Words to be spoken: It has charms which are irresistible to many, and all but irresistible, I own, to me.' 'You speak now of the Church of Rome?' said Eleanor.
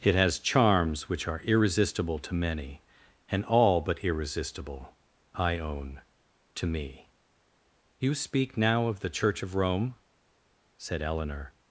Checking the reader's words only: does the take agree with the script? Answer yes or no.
yes